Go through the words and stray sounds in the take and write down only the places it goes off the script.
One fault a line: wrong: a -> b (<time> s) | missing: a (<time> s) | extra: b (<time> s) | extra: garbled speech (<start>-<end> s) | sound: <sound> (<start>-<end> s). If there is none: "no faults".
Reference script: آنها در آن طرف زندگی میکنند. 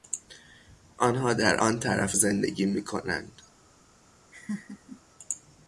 sound: laugh (4.3-5.0 s)